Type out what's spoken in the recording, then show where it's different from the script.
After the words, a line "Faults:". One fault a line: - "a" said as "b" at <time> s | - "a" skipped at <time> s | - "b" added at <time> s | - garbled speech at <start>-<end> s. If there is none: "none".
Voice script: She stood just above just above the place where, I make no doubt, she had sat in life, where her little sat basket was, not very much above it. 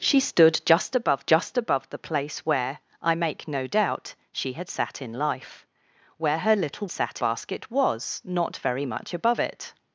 She stood just above just above the place where, I make no doubt, she had sat in life, where her little sat basket was, not very much above it.
Faults:
none